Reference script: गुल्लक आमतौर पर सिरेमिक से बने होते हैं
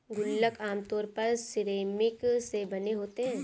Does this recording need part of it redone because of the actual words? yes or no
no